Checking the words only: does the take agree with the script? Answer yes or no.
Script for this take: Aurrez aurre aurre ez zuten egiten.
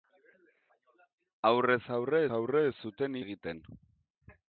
yes